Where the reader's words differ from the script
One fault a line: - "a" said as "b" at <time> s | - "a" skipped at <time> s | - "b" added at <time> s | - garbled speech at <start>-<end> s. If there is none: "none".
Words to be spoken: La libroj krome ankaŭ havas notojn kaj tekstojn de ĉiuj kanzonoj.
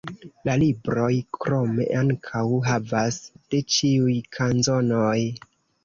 - "notojn kaj tekstojn" skipped at 3.2 s